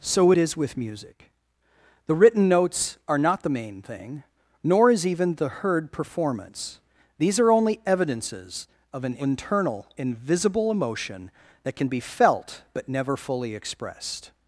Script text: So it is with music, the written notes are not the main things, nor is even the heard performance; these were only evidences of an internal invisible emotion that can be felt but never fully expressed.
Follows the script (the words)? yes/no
no